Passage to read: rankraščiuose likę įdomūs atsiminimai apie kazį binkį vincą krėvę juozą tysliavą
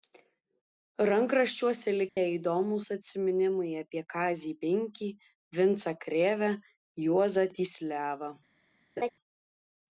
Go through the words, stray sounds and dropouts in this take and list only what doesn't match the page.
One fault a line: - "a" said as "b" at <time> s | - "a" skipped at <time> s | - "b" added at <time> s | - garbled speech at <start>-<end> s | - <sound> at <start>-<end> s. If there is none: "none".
- dropout at 2.1-2.2 s
- laugh at 9.0-9.1 s